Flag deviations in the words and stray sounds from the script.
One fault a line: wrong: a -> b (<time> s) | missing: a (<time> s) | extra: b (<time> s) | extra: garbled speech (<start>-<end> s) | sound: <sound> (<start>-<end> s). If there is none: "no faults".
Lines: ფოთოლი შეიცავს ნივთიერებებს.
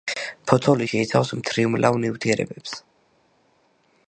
extra: მთრიმლავ (1.4 s)